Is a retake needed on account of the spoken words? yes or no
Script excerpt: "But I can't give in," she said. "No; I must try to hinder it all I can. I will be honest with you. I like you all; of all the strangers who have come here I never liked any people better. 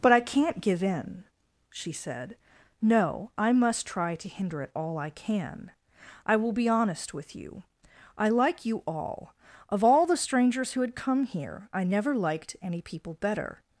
yes